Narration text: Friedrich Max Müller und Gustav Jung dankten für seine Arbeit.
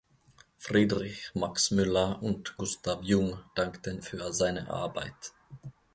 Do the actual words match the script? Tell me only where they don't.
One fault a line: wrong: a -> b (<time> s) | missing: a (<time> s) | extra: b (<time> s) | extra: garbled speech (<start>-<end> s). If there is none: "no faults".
no faults